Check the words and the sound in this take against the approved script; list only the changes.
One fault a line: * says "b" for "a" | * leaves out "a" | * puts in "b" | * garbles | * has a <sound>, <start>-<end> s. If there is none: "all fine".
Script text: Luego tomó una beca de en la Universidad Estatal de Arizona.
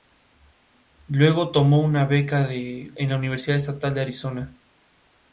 all fine